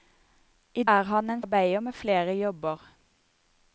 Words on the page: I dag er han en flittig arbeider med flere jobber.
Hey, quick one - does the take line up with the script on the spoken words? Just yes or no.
no